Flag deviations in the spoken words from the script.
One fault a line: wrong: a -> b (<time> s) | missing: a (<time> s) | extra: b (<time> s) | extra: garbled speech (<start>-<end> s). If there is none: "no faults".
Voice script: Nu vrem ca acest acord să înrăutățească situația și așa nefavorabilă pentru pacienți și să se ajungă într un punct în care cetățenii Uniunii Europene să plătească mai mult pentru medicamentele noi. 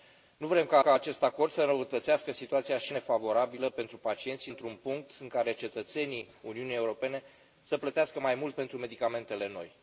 extra: ca (0.8 s)
missing: așa (2.9 s)
missing: să se ajungă (4.5 s)